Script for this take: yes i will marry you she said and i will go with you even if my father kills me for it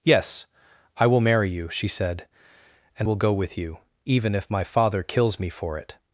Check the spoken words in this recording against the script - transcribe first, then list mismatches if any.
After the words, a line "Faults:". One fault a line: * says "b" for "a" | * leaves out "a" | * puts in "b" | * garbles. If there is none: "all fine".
yes i will marry you she said and will go with you even if my father kills me for it
Faults:
* leaves out "i"